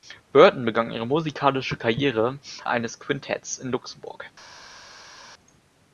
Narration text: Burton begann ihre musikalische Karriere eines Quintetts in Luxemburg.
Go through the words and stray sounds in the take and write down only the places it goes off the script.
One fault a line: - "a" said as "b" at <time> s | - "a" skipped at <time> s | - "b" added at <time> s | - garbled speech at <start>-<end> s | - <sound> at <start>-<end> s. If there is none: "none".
none